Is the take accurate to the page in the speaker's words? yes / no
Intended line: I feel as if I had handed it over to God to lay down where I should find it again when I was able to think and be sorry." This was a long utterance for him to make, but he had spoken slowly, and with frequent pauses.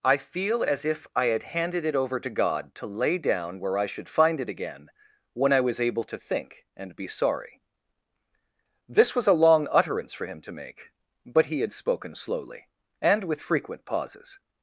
yes